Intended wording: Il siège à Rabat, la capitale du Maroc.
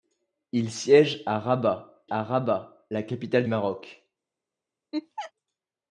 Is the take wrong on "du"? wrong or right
wrong